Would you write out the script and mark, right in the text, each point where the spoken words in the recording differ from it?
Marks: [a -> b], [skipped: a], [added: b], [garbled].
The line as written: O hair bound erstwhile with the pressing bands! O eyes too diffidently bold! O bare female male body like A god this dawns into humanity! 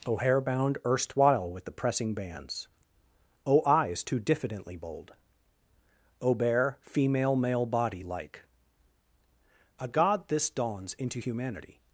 O hair bound erstwhile with the pressing bands! O eyes too diffidently bold! O bare female male body like A god this dawns into humanity!